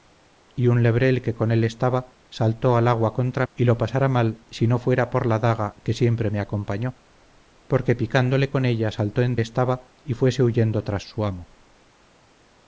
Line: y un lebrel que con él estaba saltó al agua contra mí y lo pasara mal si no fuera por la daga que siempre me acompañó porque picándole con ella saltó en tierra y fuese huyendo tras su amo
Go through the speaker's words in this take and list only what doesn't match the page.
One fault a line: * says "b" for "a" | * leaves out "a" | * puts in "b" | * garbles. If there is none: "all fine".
* leaves out "mí"
* says "estaba" for "tierra"